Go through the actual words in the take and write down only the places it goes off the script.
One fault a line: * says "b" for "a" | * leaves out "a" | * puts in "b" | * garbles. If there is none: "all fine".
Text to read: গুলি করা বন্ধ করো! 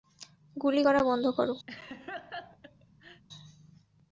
all fine